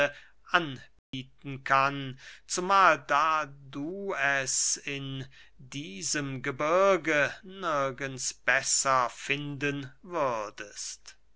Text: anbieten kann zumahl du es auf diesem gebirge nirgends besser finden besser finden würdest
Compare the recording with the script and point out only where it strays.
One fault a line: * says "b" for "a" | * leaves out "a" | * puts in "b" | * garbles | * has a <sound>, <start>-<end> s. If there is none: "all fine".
* has a dropout, 1.0-1.1 s
* puts in "da"
* says "in" for "auf"
* leaves out "besser finden"